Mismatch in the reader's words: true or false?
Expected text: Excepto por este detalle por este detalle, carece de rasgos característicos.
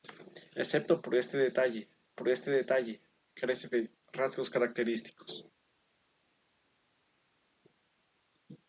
false